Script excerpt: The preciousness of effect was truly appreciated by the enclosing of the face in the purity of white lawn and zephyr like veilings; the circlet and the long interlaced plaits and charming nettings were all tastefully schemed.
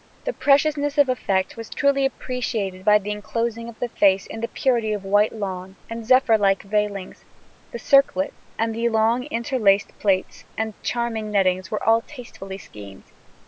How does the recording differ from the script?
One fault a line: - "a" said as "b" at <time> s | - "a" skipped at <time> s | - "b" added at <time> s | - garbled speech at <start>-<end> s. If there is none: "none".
none